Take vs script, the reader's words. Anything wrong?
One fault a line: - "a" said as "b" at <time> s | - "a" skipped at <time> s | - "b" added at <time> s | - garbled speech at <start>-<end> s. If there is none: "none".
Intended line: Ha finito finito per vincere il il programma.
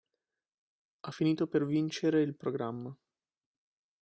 - "finito" skipped at 1.5 s
- "il" skipped at 2.4 s